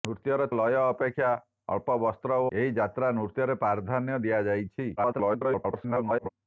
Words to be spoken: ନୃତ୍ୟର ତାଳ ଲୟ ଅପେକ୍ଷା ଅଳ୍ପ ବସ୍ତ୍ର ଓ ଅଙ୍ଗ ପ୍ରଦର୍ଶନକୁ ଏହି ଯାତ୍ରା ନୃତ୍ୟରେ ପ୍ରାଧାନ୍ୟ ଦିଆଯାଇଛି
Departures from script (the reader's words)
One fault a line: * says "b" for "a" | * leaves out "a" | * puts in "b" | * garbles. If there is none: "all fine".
* leaves out "ତାଳ"
* leaves out "ଅଙ୍ଗ ପ୍ରଦର୍ଶନକୁ"
* garbles